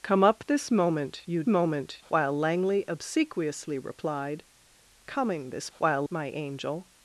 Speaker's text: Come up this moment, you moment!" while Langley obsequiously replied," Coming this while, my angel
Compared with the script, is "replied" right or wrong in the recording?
right